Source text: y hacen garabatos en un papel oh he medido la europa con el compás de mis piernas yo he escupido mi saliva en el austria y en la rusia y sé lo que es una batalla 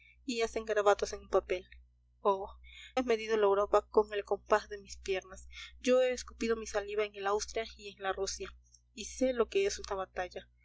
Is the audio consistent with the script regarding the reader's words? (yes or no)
yes